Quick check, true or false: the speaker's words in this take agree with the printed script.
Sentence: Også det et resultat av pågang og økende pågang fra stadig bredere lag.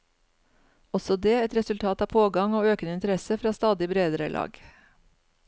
false